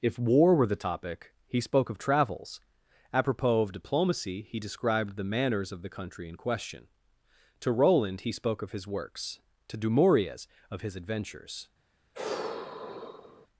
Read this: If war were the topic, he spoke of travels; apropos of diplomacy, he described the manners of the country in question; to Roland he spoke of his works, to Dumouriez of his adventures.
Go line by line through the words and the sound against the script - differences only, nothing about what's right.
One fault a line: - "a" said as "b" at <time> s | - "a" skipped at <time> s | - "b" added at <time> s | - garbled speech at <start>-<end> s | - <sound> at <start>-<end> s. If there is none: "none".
- sigh at 12.1-13.5 s